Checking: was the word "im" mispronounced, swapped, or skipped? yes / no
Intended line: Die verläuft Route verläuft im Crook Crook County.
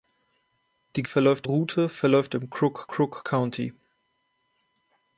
no